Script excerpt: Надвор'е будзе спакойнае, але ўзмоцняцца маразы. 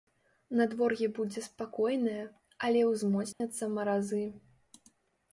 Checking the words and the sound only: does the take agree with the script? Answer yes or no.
no